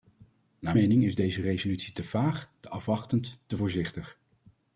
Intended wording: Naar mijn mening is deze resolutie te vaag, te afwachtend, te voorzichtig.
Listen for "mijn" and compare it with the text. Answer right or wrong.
wrong